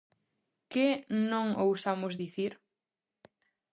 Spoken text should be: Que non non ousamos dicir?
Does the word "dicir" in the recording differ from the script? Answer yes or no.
no